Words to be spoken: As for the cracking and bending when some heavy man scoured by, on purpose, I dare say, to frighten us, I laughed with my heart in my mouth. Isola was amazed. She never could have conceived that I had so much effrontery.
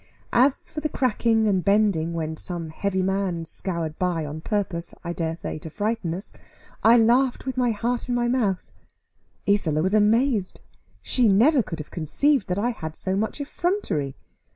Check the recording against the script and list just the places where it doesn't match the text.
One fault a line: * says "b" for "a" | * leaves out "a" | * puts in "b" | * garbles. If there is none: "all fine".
all fine